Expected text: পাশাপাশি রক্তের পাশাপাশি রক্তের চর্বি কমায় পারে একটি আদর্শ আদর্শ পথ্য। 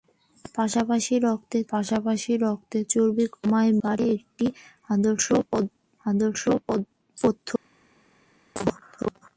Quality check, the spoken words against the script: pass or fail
pass